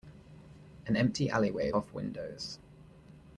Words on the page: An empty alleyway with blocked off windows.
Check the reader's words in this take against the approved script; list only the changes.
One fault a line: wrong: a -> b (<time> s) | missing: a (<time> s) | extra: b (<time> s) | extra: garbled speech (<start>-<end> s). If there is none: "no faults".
missing: with blocked (1.7 s)